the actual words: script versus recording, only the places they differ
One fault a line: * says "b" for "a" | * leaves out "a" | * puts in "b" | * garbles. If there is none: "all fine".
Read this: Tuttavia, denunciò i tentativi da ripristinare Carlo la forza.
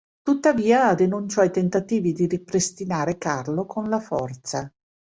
* says "di" for "da"
* puts in "con"